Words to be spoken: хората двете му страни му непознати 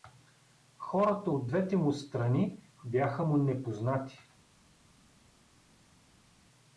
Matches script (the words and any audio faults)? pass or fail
fail